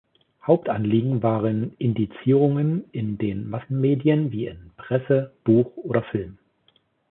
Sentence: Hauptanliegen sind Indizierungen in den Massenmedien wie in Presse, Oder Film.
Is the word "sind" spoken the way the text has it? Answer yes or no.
no